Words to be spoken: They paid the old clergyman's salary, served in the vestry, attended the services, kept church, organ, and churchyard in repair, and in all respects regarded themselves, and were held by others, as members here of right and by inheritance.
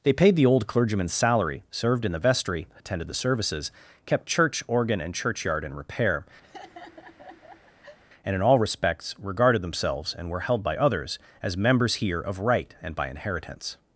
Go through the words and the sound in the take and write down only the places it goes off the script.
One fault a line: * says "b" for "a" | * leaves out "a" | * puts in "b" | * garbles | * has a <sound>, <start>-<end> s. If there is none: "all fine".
* has a laugh, 6.4-8.0 s